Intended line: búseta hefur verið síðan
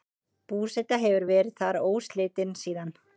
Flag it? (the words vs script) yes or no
yes